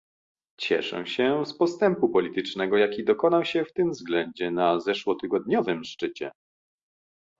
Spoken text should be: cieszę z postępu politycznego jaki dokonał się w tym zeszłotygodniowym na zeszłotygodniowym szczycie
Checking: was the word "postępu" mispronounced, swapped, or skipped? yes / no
no